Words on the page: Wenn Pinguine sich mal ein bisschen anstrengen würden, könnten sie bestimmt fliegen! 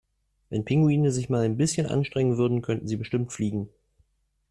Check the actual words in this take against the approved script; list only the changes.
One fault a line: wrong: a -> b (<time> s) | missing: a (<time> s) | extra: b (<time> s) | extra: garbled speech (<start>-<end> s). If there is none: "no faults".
no faults